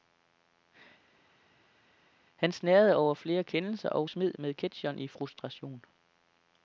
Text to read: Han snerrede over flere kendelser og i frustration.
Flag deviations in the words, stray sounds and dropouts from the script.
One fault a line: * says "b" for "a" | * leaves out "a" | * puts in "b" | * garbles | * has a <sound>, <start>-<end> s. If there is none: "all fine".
* puts in "smed med ketcheren"